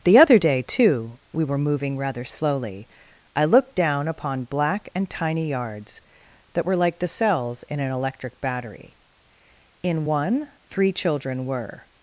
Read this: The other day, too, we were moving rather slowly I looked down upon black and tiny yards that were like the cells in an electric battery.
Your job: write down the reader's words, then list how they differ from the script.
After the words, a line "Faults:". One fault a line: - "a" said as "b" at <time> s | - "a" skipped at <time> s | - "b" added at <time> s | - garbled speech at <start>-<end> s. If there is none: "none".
The other day, too, we were moving rather slowly I looked down upon black and tiny yards that were like the cells in an electric battery. In one, three children were
Faults:
- "In one three children were" added at 9.8 s